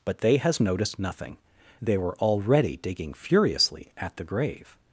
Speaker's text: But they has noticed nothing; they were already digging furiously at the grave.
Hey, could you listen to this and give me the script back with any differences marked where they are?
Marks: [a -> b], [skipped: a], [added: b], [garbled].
But they has noticed nothing; they were already digging furiously at the grave.